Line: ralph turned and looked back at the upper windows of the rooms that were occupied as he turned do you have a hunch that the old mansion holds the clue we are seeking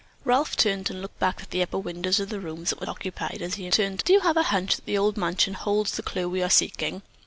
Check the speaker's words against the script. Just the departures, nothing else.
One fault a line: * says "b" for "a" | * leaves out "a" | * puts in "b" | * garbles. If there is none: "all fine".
all fine